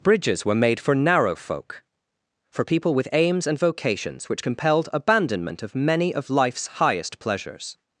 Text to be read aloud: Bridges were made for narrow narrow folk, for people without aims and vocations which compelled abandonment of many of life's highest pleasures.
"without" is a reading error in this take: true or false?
true